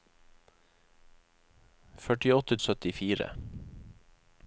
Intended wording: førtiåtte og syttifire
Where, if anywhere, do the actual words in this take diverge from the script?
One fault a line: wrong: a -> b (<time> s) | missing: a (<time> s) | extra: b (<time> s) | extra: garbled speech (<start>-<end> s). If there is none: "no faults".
no faults